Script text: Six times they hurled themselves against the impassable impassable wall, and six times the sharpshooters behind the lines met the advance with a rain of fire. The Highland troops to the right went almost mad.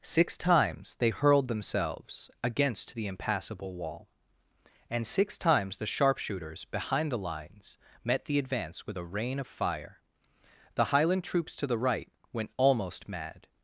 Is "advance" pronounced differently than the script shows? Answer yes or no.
no